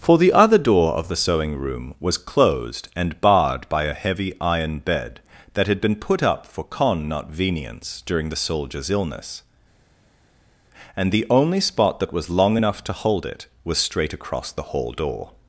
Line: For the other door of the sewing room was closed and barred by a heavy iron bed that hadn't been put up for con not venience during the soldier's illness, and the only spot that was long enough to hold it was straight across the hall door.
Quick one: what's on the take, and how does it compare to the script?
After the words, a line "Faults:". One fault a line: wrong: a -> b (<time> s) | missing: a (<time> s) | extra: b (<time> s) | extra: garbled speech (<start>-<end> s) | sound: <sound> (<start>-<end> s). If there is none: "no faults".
For the other door of the sewing room was closed and barred by a heavy iron bed that had been put up for con not venience during the soldier's illness, and the only spot that was long enough to hold it was straight across the hall door.
Faults:
wrong: hadn't -> had (5.7 s)